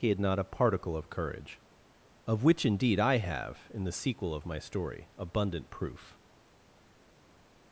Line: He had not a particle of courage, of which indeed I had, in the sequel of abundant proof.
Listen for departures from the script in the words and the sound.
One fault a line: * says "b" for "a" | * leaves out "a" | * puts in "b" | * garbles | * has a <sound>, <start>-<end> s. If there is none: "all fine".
* says "have" for "had"
* puts in "my story"